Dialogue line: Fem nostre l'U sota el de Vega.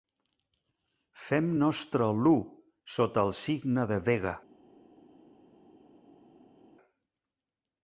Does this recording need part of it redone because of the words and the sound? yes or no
yes